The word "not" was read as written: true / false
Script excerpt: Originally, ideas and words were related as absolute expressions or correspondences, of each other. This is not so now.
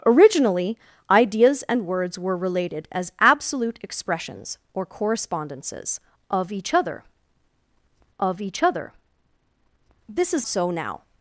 false